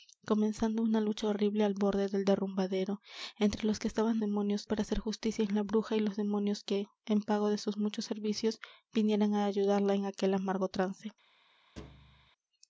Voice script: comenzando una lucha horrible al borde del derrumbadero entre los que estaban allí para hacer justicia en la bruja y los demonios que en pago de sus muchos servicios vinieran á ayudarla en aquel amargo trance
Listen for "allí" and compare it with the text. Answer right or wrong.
wrong